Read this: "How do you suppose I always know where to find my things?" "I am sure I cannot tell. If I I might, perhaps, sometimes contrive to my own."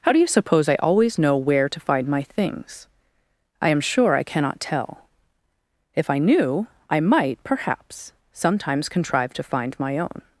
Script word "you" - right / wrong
right